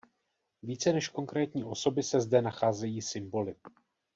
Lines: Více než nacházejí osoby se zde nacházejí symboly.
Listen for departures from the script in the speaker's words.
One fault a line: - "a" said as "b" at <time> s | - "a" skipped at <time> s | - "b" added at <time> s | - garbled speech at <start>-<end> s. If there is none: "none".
- "nacházejí" said as "konkrétní" at 1.1 s